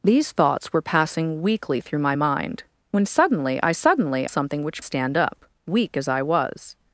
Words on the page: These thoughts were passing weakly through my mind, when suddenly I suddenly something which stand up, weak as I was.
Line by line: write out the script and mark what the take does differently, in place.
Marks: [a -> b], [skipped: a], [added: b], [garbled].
These thoughts were passing weakly through my mind, when suddenly I suddenly something which stand up, weak as I was.